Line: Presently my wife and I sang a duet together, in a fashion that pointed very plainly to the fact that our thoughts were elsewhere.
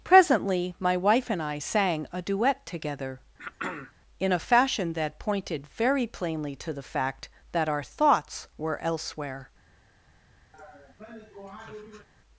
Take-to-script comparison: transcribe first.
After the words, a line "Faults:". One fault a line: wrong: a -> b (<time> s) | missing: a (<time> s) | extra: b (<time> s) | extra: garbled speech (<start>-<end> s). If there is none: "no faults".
Presently my wife and I sang a duet together, in a fashion that pointed very plainly to the fact that our thoughts were elsewhere.
Faults:
no faults